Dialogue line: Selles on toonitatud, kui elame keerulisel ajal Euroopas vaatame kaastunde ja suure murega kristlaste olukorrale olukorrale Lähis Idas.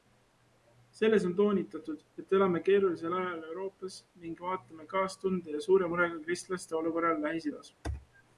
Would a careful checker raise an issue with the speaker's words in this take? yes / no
yes